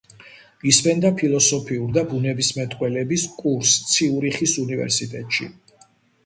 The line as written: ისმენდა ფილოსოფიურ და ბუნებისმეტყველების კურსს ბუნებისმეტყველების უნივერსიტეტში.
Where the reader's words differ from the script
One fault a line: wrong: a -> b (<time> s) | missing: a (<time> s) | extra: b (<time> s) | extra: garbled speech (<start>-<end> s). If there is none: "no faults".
wrong: ბუნებისმეტყველების -> ციურიხის (4.0 s)